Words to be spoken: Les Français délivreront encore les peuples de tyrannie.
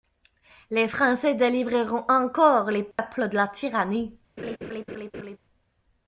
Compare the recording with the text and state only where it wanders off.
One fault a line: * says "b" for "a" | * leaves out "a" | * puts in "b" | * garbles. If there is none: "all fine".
* puts in "la"